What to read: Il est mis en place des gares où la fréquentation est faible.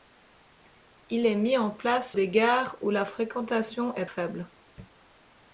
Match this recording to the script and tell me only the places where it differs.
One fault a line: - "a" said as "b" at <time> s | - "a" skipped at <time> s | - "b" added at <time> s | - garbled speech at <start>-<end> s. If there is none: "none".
none